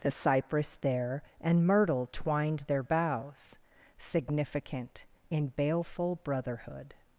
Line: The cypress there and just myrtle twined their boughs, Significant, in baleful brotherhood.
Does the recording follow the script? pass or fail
fail